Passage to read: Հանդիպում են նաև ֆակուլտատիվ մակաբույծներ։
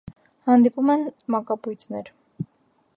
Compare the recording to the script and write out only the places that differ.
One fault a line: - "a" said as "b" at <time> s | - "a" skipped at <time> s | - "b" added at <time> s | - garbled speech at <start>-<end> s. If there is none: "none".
- "նաև ֆակուլտատիվ" skipped at 1.0 s